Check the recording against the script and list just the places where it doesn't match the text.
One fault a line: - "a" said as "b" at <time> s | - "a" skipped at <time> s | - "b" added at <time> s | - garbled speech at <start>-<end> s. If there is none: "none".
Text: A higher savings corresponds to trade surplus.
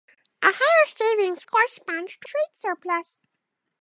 none